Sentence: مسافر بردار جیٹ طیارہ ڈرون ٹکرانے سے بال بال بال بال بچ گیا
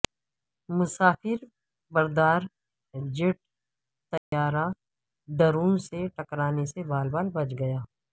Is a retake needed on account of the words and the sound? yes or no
yes